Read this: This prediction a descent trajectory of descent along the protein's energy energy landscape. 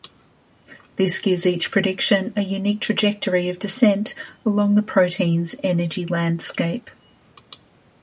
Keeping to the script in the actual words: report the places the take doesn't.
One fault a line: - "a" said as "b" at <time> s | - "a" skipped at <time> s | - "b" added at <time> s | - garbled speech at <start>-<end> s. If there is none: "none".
- "gives each" added at 1.2 s
- "descent" said as "unique" at 2.4 s
- "energy" skipped at 6.1 s